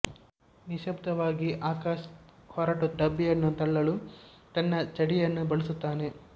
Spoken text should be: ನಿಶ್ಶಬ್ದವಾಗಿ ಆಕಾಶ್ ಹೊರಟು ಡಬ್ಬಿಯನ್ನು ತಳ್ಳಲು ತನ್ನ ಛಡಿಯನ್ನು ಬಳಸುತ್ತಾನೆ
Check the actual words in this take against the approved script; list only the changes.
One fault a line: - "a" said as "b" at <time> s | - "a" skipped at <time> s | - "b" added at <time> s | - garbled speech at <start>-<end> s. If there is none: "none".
none